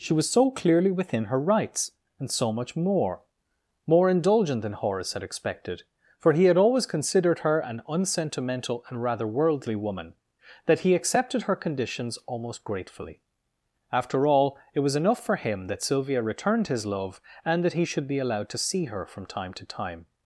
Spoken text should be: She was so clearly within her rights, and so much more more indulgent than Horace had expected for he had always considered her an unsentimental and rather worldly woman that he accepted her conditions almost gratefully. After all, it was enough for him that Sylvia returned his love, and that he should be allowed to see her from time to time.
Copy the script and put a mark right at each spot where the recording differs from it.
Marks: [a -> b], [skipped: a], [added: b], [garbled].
She was so clearly within her rights, and so much more more indulgent than Horace had expected for he had always considered her an unsentimental and rather worldly woman that he accepted her conditions almost gratefully. After all, it was enough for him that Sylvia returned his love, and that he should be allowed to see her from time to time.